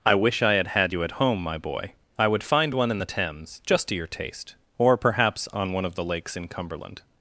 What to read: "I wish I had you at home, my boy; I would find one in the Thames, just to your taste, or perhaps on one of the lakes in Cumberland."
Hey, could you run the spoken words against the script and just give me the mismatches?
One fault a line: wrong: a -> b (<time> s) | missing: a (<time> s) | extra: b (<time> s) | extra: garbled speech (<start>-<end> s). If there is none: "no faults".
extra: had (0.7 s)